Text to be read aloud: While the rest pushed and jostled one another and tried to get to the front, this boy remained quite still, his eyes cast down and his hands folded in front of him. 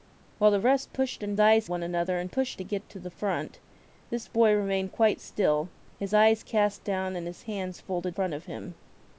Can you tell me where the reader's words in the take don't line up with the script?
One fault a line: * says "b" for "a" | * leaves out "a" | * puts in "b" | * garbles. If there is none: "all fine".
* says "eyes" for "jostled"
* says "pushed" for "tried"
* leaves out "in"